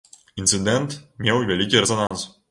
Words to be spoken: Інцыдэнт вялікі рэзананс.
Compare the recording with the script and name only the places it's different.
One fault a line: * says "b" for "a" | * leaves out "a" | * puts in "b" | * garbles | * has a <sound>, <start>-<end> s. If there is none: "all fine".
* puts in "меў"
* has a dropout, 2.1-2.1 s